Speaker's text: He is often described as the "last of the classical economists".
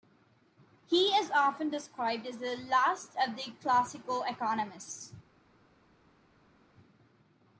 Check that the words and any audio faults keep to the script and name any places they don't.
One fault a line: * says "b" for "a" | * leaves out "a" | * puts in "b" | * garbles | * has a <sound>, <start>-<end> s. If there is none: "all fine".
all fine